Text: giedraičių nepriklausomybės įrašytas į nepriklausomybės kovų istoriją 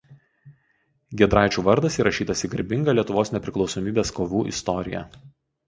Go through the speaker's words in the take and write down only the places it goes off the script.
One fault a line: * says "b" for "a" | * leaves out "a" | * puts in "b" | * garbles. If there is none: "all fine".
* says "vardas" for "nepriklausomybės"
* puts in "garbingą lietuvos"